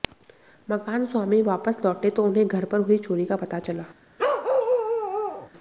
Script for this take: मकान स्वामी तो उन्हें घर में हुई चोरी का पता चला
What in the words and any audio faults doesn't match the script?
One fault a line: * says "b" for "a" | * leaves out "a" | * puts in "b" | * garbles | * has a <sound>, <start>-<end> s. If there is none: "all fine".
* puts in "वापस लौटे"
* says "पर" for "में"
* has a bark, 4.2-5.5 s